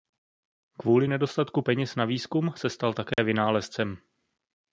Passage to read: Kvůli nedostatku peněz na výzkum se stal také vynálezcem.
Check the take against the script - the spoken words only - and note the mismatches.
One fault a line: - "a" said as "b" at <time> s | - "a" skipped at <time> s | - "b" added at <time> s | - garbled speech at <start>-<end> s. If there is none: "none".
none